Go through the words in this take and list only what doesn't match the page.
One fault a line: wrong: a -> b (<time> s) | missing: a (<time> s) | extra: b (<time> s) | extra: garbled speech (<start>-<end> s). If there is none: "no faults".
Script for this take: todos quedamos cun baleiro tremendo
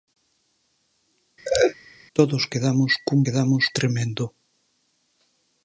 wrong: baleiro -> quedamos (3.2 s)